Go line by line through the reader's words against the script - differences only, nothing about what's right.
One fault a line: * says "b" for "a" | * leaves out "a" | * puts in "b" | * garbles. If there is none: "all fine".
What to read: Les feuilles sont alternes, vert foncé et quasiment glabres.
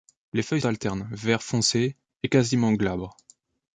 * leaves out "sont"